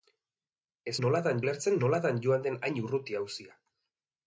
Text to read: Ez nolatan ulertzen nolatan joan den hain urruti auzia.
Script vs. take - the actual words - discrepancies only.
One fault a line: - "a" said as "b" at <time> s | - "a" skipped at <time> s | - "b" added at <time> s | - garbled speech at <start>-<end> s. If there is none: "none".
none